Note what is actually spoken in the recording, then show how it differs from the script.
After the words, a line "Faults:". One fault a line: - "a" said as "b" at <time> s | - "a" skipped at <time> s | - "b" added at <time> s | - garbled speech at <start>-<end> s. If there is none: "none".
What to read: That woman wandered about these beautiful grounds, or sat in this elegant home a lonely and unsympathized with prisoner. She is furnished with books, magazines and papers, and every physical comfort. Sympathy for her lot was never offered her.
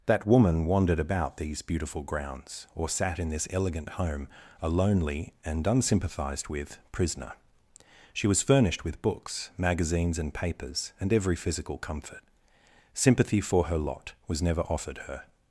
That woman wandered about these beautiful grounds, or sat in this elegant home a lonely and unsympathized with prisoner. She was furnished with books, magazines and papers, and every physical comfort. Sympathy for her lot was never offered her.
Faults:
- "is" said as "was" at 8.3 s